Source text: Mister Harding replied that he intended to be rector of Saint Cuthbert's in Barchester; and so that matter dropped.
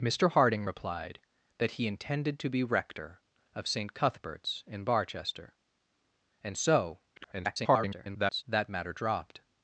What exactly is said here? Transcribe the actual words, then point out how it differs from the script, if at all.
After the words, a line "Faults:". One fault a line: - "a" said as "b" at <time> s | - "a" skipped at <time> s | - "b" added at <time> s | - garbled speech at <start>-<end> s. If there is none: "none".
Mister Harding replied that he intended to be rector of Saint Cuthbert's in Barchester; and so [garbled] that matter dropped.
Faults:
- garbled speech at 7.2-8.4 s